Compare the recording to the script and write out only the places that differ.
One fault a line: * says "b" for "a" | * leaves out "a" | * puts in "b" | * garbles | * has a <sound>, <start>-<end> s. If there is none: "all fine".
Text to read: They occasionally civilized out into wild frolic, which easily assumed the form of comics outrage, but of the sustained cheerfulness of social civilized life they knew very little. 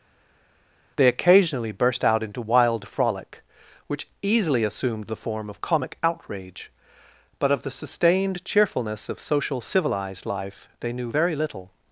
* says "burst" for "civilized"
* says "comic" for "comics"